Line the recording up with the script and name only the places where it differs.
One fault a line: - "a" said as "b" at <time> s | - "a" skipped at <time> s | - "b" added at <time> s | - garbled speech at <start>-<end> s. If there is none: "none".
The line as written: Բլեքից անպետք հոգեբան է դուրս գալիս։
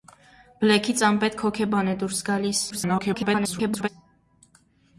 - garbled speech at 2.7-3.9 s